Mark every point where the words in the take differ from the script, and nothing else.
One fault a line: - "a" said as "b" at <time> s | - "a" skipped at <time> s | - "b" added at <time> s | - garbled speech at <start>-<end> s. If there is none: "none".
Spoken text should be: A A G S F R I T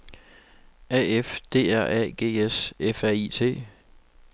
- "F D R" added at 1.2 s